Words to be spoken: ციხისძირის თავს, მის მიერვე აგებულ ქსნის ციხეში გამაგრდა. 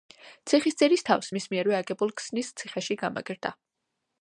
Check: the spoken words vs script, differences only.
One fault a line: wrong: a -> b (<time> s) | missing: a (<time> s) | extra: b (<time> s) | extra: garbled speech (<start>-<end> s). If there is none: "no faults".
no faults